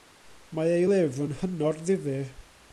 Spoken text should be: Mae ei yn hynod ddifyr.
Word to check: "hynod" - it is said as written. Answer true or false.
true